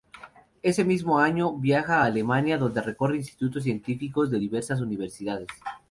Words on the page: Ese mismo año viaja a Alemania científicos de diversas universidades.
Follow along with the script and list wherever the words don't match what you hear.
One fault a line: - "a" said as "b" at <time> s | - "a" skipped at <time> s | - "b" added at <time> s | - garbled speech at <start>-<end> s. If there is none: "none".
- "donde recorre institutos" added at 2.6 s